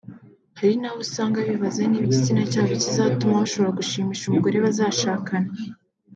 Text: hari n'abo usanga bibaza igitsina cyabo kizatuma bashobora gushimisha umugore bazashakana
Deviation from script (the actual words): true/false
true